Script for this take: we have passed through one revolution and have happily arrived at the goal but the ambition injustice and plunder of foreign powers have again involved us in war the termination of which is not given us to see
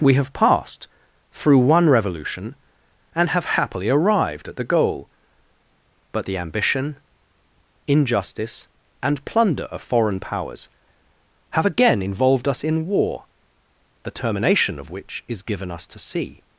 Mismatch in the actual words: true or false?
true